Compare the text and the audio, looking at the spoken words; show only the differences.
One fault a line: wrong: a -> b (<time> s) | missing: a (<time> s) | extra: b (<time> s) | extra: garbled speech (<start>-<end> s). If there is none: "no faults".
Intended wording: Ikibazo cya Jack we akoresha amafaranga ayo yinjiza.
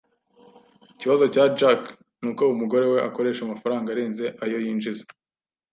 extra: nuko umugore (2.2 s)
extra: arenze (3.9 s)